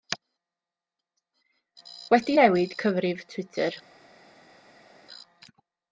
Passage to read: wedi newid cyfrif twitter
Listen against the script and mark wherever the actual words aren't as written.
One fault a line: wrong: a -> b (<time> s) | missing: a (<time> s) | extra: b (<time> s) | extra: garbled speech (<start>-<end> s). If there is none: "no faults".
no faults